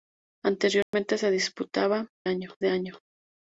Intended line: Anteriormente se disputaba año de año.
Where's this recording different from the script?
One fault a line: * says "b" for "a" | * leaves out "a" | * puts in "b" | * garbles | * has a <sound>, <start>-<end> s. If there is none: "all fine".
* has a dropout, 0.8-0.9 s